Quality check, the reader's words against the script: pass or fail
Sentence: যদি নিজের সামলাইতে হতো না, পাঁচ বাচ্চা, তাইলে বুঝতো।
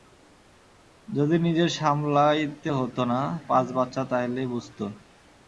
pass